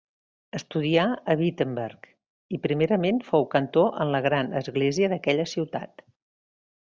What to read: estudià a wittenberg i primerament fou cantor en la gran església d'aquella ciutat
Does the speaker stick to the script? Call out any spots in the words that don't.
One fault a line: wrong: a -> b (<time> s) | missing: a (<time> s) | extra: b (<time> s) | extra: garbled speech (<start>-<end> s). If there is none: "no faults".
no faults